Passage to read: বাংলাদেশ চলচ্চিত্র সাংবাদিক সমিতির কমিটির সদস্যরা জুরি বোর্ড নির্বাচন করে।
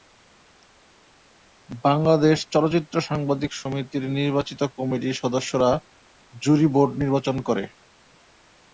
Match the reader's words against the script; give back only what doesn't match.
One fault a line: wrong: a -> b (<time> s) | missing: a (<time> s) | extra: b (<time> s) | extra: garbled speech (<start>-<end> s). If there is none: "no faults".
extra: নির্বাচিত (4.2 s)